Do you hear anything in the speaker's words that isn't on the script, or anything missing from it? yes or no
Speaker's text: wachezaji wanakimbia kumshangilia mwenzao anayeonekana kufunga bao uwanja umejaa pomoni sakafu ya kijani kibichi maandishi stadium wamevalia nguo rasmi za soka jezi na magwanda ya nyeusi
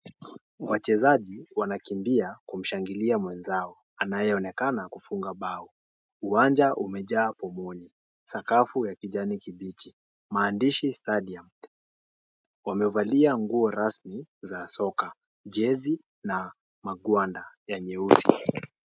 no